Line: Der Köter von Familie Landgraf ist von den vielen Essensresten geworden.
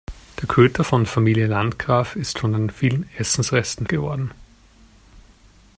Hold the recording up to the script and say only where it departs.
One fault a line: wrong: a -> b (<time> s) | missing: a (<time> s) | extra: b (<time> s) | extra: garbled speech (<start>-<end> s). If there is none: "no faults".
no faults